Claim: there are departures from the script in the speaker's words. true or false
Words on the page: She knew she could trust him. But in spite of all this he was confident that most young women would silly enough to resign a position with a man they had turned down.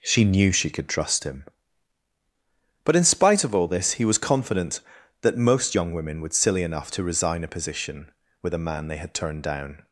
false